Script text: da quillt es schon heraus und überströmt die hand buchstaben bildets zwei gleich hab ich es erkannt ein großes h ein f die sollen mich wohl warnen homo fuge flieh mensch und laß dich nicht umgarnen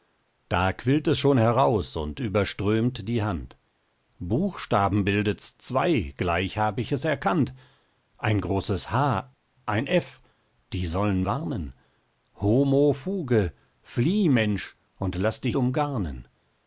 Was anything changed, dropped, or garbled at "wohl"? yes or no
yes